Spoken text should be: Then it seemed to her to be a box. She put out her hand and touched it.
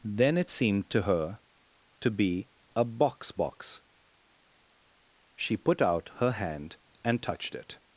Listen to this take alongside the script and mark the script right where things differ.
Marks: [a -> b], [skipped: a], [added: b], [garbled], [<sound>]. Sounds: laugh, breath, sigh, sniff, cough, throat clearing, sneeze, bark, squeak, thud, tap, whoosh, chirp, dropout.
Then it seemed to her to be a box. [added: box] She put out her hand and touched it.